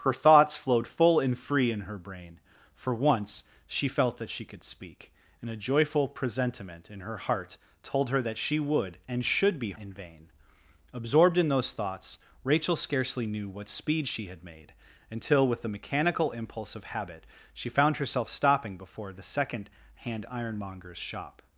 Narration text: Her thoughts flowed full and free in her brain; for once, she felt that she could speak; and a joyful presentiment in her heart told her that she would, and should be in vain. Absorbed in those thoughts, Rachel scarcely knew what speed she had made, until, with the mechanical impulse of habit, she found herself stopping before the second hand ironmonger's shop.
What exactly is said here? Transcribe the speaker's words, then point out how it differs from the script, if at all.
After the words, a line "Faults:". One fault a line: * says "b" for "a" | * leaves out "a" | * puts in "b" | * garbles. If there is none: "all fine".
Her thoughts flowed full and free in her brain; for once, she felt that she could speak; and a joyful presentiment in her heart told her that she would, and should be in vain. Absorbed in those thoughts, Rachel scarcely knew what speed she had made, until, with the mechanical impulse of habit, she found herself stopping before the second hand ironmonger's shop.
Faults:
all fine